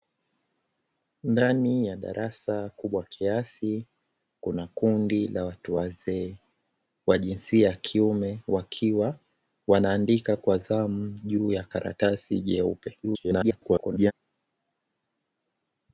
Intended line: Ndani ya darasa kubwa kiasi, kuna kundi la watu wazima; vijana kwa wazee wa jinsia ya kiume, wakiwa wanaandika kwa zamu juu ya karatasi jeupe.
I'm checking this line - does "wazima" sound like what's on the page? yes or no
no